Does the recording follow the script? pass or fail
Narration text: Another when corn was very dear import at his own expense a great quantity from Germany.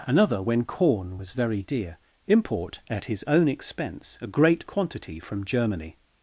pass